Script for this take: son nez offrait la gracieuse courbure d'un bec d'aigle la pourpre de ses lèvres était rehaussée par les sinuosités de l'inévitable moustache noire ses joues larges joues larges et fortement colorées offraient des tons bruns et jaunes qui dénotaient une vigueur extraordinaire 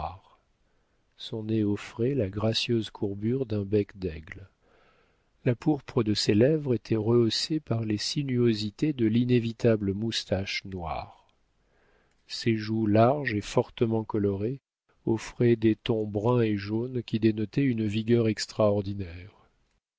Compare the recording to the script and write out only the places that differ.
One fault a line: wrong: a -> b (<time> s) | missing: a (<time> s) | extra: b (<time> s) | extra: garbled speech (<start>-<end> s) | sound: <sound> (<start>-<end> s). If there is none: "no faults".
missing: joues larges (13.3 s)